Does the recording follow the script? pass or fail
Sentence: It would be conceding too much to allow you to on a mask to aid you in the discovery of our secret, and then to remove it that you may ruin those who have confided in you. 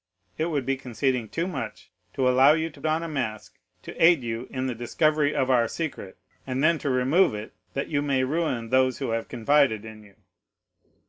pass